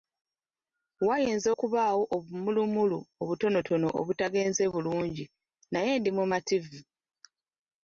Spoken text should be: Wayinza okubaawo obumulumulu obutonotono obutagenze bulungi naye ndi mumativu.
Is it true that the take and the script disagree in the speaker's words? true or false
false